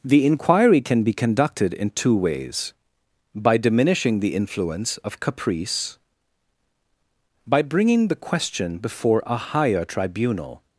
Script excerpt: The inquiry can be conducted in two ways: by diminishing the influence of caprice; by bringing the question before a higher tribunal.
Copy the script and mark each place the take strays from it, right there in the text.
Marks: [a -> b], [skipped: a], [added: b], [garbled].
The inquiry can be conducted in two ways: by diminishing the influence of caprice; by bringing the question before a higher tribunal.